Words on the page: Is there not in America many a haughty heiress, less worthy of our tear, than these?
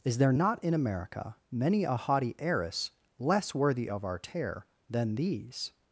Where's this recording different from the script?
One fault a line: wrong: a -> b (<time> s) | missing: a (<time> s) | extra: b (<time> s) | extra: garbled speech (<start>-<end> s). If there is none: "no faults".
no faults